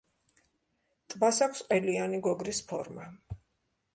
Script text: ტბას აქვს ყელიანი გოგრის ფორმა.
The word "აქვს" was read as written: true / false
true